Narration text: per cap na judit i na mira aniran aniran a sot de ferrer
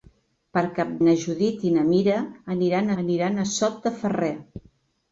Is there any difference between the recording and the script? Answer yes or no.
no